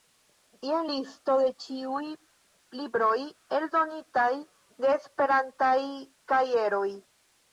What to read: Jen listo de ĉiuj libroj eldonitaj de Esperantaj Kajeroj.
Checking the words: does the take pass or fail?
pass